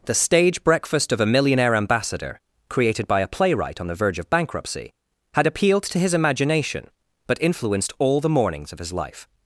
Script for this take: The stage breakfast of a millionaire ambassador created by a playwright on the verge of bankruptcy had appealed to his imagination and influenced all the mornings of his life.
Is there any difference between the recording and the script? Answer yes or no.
yes